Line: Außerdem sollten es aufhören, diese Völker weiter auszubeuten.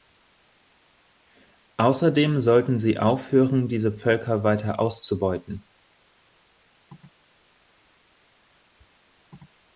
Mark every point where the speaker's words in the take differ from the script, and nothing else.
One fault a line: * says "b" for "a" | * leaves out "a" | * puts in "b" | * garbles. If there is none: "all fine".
* says "sie" for "es"